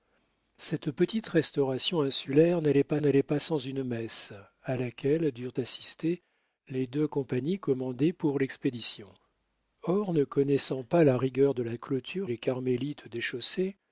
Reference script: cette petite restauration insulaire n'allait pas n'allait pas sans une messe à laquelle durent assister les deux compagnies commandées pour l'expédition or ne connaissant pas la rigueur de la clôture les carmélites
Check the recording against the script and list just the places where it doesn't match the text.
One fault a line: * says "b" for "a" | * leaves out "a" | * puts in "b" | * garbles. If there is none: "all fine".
all fine